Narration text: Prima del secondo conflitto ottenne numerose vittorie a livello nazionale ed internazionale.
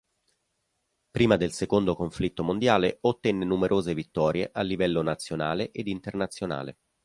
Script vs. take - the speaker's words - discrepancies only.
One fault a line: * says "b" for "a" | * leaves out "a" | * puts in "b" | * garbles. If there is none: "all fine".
* puts in "mondiale"